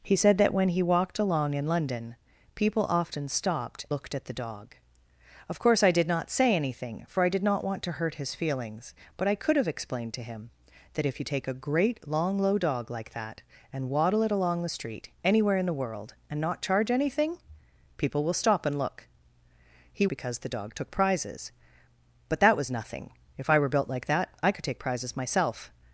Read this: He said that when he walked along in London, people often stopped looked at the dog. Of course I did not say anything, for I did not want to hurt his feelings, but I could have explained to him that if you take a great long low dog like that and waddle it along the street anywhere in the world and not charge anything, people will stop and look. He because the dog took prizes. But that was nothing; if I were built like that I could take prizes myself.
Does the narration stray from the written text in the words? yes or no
no